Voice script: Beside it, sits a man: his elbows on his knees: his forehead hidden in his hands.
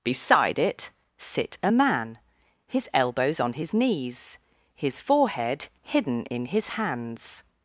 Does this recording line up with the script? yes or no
no